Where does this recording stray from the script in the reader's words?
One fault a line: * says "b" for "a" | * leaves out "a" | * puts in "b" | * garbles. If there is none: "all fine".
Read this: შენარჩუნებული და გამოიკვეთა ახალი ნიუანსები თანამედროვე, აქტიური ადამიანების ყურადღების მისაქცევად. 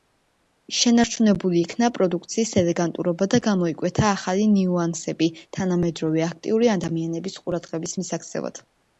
* puts in "იქნა პროდუქციის ელეგანტურობა"